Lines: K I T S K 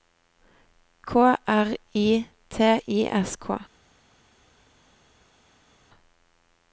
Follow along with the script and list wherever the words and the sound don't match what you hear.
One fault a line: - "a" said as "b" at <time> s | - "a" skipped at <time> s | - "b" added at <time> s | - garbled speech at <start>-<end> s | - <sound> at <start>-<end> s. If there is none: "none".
- "R" added at 1.2 s
- "I" added at 2.6 s